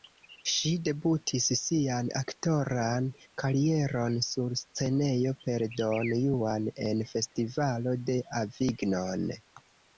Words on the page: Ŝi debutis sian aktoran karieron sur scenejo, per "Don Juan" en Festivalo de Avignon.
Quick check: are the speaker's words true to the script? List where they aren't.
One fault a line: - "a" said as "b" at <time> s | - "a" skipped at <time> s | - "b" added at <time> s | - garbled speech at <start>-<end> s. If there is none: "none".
none